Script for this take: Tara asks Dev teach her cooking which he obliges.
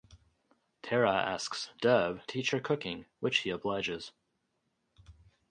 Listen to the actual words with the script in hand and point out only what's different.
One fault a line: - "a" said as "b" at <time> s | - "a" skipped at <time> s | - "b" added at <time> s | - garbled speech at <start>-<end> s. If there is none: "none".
none